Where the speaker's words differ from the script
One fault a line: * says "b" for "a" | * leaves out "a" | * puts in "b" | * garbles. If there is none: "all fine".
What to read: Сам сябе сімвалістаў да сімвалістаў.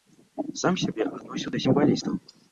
* says "адносіў" for "сімвалістаў"